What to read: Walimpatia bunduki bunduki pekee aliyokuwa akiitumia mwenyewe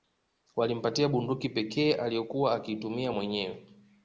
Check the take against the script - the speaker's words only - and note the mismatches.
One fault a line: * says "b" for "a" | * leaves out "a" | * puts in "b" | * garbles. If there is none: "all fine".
* leaves out "bunduki"